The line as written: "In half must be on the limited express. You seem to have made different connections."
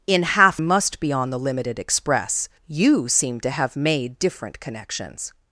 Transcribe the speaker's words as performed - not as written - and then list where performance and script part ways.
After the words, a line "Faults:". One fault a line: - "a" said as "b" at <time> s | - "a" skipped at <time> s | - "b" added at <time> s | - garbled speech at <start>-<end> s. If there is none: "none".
"In half must be on the limited express. You seem to have made different connections."
Faults:
none